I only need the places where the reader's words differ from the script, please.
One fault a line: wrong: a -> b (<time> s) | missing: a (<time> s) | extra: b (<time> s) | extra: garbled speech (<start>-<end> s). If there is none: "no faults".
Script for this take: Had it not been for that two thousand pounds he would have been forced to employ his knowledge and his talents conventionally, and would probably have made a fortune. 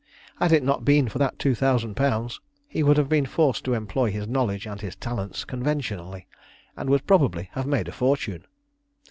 no faults